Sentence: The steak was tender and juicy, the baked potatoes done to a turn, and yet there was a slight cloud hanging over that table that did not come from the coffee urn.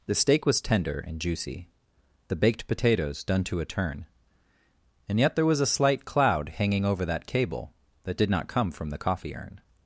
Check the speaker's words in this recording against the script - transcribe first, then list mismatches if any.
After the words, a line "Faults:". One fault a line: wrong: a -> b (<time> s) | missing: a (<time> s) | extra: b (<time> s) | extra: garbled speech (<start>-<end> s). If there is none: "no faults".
The steak was tender and juicy, the baked potatoes done to a turn, and yet there was a slight cloud hanging over that cable that did not come from the coffee urn.
Faults:
wrong: table -> cable (7.3 s)